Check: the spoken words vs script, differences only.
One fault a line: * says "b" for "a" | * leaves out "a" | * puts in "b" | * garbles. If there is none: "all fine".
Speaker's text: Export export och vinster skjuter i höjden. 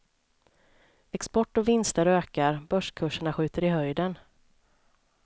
* leaves out "export"
* puts in "ökar börskurserna"